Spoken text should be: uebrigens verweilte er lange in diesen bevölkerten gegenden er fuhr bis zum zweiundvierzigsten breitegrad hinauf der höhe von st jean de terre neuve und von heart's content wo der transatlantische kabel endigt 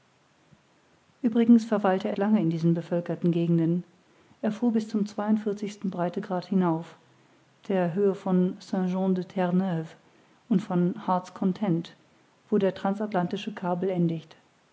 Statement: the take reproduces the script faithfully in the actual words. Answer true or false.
true